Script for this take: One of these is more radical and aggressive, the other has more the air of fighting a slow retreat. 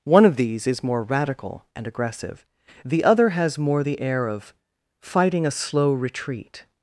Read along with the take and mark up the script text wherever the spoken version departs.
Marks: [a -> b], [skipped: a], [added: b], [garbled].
One of these is more radical and aggressive, the other has more the air of fighting a slow retreat.